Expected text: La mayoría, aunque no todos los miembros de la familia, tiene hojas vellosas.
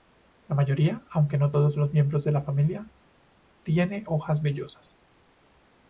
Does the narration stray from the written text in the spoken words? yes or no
no